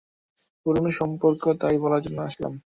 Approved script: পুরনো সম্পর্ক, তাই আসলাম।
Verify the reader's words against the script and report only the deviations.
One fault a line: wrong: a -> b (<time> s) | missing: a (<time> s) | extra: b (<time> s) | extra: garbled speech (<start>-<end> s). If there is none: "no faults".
extra: বলার জন্য (1.8 s)